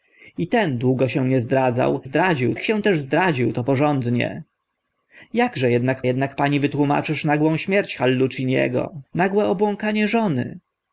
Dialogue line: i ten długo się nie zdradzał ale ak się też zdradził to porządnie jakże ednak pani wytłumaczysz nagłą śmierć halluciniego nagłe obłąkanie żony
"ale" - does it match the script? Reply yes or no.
no